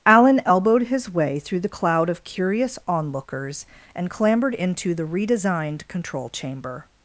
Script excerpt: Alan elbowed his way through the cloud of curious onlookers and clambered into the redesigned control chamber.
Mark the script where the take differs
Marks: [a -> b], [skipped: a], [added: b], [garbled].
Alan elbowed his way through the cloud of curious onlookers and clambered into the redesigned control chamber.